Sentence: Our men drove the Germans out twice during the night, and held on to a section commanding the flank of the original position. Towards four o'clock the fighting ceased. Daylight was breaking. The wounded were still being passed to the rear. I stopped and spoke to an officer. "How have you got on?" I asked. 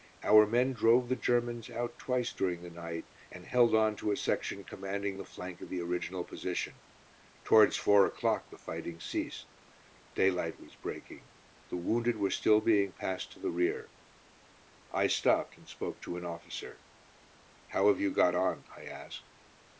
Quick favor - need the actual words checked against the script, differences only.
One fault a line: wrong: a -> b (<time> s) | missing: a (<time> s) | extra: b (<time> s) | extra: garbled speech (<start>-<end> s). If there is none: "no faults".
no faults